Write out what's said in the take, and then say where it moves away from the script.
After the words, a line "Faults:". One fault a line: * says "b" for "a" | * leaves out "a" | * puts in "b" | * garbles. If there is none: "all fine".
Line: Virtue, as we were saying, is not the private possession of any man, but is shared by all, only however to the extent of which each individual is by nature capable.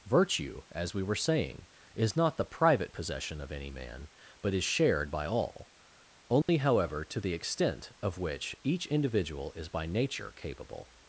Virtue, as we were saying, is not the private possession of any man, but is shared by all, only however to the extent of which each individual is by nature capable.
Faults:
all fine